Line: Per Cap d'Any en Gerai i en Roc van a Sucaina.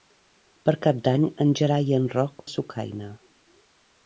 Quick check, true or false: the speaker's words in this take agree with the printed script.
false